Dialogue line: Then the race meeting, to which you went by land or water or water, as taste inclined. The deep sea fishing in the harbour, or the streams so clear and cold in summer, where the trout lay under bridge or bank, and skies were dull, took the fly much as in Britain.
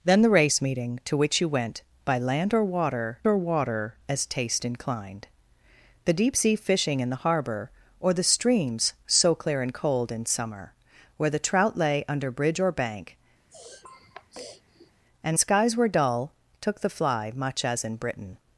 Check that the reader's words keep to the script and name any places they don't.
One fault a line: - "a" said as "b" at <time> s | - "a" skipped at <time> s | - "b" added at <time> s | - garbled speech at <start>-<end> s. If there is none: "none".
none